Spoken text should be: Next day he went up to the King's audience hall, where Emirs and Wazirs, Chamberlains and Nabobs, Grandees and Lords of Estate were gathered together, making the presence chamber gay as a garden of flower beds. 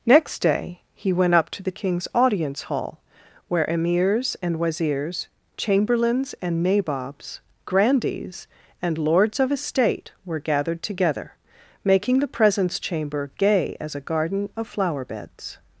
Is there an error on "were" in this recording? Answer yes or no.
no